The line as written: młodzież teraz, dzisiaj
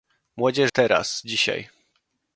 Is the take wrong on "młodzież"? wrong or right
right